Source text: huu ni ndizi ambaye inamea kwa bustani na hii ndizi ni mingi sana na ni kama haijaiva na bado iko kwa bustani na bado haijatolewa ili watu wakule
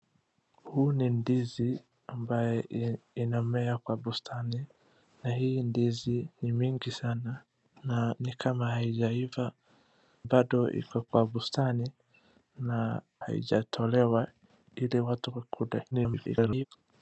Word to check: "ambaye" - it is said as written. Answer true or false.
true